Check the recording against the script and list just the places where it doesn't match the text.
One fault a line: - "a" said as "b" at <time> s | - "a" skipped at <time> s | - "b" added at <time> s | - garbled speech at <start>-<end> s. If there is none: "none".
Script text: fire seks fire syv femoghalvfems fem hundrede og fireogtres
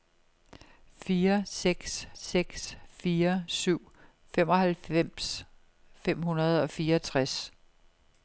- "seks" added at 2.1 s